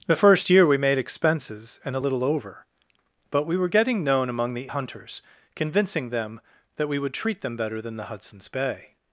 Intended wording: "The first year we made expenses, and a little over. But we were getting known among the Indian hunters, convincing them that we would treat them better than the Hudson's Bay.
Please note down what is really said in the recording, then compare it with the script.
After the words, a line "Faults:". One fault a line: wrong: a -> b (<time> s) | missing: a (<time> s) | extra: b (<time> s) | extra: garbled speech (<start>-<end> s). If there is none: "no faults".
"The first year we made expenses, and a little over. But we were getting known among the Hunters, convincing them that we would treat them better than the Hudson's Bay.
Faults:
missing: Indian (4.7 s)